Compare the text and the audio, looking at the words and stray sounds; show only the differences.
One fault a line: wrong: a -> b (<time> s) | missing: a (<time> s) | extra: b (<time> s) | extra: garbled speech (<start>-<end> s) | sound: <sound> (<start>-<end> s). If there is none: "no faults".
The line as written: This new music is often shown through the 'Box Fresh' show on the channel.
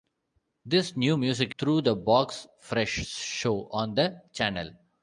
missing: is often shown (1.5 s)